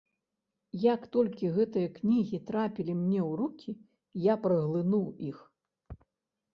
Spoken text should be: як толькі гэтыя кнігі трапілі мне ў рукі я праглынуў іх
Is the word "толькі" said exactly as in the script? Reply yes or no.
yes